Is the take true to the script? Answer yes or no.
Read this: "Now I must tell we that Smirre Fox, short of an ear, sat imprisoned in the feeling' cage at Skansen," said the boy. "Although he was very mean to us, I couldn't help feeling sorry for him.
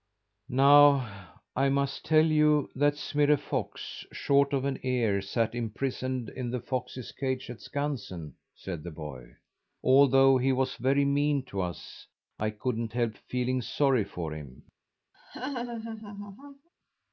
no